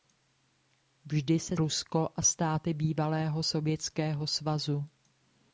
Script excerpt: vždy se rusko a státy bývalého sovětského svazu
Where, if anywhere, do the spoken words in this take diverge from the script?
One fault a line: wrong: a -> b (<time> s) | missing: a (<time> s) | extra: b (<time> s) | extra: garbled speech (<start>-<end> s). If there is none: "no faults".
no faults